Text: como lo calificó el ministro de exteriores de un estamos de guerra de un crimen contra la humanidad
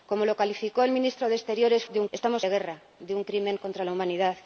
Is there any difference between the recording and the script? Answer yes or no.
no